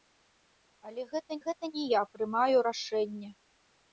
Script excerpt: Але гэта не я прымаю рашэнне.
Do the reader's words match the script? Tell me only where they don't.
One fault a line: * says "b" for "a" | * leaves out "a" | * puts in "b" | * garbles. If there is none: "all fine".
* puts in "гэта"